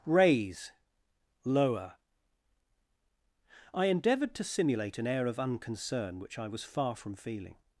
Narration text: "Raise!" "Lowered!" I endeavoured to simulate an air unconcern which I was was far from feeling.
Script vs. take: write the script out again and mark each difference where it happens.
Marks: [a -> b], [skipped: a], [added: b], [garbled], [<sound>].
"Raise!" ["Lowered!" -> Lower] I endeavoured to simulate an air [added: of] unconcern which I was [skipped: was] far from feeling.